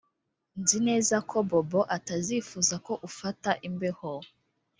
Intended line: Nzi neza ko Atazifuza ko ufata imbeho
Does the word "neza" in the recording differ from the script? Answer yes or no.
no